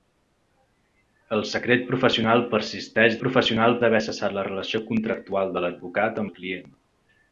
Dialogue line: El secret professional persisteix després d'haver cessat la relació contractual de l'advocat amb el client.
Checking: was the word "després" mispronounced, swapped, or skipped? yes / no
yes